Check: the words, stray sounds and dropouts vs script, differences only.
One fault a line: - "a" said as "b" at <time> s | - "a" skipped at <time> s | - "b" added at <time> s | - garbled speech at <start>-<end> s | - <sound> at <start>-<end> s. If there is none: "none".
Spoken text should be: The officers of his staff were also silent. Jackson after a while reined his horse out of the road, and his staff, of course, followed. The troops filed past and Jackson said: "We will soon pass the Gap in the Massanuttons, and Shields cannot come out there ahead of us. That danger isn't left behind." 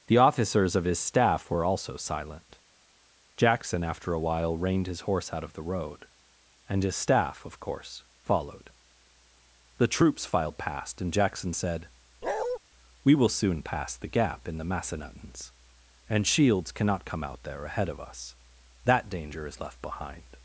- bark at 12.2-12.6 s
- "isn't" said as "is" at 19.5 s